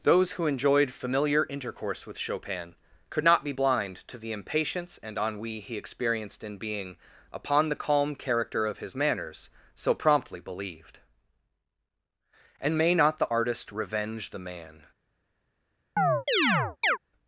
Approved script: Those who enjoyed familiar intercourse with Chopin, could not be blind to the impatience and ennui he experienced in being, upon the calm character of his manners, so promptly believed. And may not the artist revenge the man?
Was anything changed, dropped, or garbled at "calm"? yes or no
no